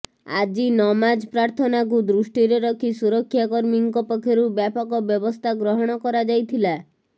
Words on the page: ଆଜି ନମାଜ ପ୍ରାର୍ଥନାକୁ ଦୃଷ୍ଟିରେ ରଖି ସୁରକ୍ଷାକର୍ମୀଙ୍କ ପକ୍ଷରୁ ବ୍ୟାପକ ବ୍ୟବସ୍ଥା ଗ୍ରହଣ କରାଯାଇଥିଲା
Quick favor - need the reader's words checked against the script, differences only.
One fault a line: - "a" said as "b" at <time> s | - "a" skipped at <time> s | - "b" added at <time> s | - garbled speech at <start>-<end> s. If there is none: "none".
none